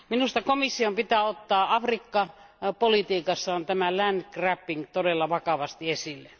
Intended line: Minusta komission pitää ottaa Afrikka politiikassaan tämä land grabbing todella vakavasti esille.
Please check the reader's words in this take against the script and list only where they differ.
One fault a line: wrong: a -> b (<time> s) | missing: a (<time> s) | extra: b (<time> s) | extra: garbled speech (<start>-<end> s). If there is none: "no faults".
no faults